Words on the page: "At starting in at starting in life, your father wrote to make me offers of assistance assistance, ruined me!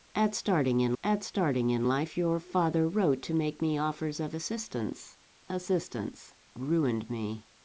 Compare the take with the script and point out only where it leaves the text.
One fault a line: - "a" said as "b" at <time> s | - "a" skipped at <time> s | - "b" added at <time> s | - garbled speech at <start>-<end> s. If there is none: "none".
none